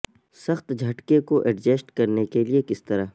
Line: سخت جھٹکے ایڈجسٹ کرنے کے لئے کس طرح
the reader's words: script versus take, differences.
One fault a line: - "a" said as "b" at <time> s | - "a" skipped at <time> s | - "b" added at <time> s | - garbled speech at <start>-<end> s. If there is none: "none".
- "کو" added at 1.2 s